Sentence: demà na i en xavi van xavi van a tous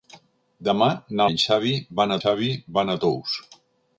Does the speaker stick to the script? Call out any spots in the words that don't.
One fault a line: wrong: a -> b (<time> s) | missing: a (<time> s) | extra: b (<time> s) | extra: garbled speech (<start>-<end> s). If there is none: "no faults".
no faults